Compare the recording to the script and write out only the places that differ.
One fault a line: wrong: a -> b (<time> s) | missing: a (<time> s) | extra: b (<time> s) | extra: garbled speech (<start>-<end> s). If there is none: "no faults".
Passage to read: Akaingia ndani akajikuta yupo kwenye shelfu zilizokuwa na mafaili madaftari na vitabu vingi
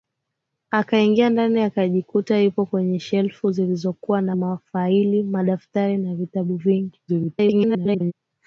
extra: garbled speech (7.1-8.1 s)